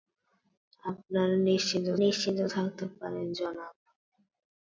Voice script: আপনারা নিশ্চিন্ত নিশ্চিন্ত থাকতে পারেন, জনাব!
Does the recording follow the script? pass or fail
pass